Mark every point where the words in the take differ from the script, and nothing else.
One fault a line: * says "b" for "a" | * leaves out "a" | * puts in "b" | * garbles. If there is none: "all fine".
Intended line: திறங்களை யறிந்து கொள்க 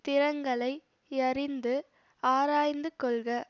* puts in "ஆராய்ந்து"